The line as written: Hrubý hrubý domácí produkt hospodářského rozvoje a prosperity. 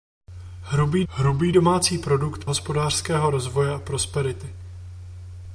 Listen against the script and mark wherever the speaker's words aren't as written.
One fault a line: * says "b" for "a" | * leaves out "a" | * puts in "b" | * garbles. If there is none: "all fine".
all fine